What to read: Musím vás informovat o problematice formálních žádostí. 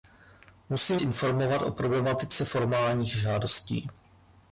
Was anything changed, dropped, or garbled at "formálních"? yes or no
no